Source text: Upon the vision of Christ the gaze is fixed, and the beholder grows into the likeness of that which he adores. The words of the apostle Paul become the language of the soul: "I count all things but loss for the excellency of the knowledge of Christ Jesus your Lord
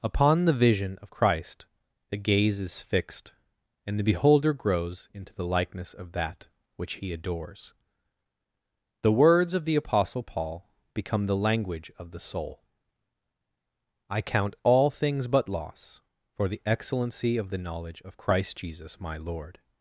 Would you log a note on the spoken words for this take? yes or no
yes